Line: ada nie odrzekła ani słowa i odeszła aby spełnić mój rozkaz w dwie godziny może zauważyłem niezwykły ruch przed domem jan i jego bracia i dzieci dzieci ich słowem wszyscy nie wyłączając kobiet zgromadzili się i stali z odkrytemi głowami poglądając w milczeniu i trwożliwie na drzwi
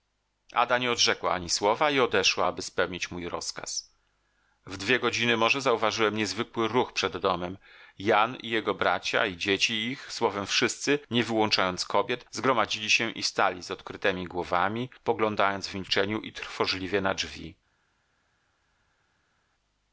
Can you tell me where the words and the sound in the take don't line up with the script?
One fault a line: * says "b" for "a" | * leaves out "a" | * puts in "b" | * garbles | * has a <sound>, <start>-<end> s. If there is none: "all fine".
* leaves out "dzieci"